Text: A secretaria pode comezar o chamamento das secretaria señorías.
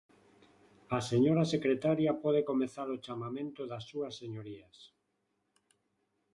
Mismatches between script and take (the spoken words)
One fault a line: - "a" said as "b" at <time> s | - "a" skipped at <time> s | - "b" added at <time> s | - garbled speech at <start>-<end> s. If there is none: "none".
- "señora" added at 1.1 s
- "secretaria" said as "súas" at 3.9 s